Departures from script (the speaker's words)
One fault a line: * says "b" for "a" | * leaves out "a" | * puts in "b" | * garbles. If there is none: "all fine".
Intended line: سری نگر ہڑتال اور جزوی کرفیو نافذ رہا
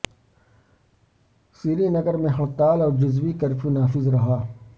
* puts in "میں"